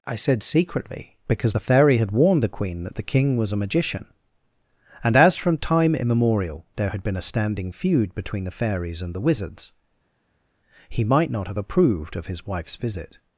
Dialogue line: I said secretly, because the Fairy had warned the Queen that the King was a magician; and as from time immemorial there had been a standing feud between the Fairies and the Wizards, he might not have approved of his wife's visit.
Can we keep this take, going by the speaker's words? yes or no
yes